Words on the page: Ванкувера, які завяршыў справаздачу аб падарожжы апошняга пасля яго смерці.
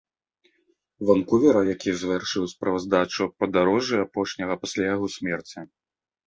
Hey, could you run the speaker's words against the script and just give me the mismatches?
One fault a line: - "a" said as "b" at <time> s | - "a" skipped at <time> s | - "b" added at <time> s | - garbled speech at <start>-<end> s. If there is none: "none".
none